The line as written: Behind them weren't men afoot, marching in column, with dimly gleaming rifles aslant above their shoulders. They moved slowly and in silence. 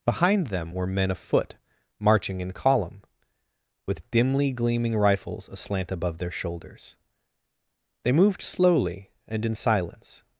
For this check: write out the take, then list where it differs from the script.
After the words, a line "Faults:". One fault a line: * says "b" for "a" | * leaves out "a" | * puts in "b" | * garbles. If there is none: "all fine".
Behind them were men afoot, marching in column, with dimly gleaming rifles aslant above their shoulders. They moved slowly and in silence.
Faults:
* says "were" for "weren't"